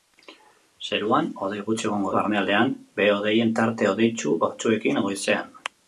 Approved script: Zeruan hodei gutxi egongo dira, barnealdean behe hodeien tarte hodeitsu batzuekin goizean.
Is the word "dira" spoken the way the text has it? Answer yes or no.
no